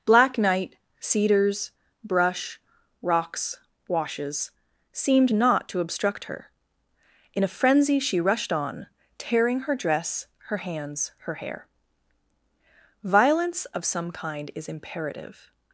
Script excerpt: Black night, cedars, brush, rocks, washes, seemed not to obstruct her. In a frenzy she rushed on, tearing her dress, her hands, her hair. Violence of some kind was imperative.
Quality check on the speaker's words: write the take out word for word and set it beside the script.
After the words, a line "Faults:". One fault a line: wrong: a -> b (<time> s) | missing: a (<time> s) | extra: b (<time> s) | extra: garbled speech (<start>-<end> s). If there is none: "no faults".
Black night, cedars, brush, rocks, washes, seemed not to obstruct her. In a frenzy she rushed on, tearing her dress, her hands, her hair. Violence of some kind is imperative.
Faults:
wrong: was -> is (14.5 s)